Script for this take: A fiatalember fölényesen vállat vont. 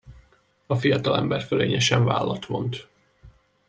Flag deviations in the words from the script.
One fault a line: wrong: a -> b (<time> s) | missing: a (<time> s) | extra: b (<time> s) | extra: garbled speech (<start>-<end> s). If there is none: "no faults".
no faults